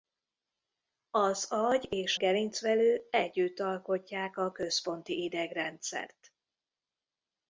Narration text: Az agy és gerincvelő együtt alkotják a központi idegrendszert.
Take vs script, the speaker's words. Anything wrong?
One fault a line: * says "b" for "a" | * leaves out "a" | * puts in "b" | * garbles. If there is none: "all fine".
all fine